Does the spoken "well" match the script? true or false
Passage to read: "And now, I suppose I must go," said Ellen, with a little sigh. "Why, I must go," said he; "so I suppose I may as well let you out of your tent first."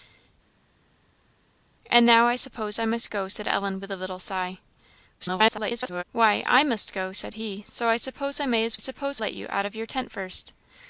false